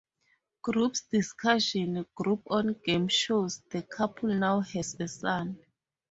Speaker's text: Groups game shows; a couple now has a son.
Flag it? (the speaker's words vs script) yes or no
yes